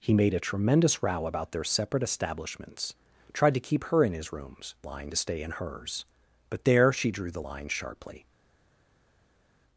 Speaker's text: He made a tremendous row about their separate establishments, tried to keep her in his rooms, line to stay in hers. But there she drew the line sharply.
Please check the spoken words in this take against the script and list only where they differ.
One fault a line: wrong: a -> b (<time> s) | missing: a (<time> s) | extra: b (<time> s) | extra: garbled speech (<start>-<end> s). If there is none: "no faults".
no faults